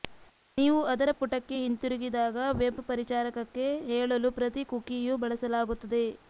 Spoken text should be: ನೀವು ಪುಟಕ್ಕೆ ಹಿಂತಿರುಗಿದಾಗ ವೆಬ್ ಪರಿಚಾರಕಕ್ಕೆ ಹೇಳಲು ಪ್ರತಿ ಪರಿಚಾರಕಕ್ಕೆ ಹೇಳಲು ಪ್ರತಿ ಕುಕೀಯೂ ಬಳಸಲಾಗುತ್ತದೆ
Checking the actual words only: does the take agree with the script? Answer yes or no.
no